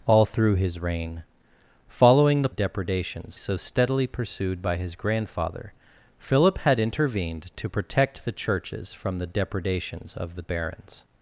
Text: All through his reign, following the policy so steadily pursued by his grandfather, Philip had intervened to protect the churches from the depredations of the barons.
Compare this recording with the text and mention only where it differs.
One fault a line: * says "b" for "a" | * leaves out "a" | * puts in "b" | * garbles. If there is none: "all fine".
* says "depredations" for "policy"